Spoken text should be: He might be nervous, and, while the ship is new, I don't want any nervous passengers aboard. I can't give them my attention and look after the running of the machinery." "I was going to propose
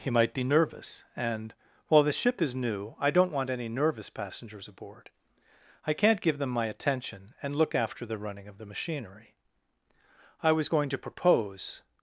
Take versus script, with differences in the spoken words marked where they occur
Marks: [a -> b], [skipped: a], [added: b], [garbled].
He might be nervous, and, while the ship is new, I don't want any nervous passengers aboard. I can't give them my attention and look after the running of the machinery." "I was going to propose